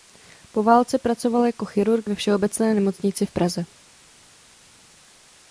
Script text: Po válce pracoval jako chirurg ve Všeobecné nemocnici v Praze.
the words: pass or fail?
pass